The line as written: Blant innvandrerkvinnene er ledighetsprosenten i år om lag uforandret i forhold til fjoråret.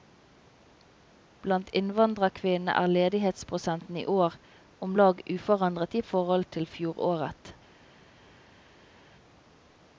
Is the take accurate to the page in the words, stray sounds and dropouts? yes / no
yes